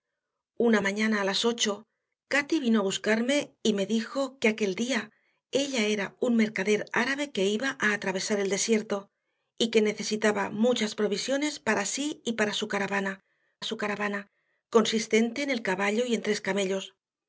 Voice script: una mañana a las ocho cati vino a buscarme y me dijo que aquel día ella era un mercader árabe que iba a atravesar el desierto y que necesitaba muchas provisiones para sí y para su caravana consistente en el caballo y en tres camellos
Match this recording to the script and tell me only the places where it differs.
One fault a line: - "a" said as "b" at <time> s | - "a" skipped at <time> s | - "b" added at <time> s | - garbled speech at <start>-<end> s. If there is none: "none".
- "su caravana" added at 13.6 s